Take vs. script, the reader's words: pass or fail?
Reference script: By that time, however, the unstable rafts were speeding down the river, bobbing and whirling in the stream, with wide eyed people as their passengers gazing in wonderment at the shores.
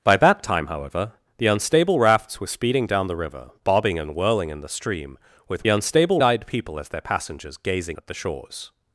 fail